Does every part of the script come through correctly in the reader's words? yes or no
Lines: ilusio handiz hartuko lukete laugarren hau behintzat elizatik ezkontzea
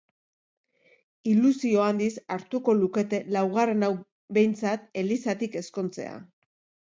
yes